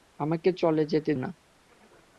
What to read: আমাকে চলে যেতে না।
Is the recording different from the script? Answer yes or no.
no